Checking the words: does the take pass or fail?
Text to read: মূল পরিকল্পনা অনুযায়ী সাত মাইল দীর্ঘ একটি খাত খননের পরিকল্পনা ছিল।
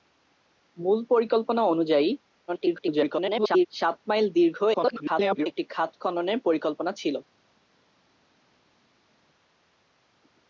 fail